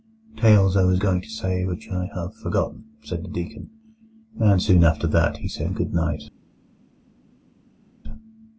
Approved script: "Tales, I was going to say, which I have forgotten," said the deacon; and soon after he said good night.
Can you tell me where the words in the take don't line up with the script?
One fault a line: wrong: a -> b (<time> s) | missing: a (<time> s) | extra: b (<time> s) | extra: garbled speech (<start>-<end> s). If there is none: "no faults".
extra: that (5.1 s)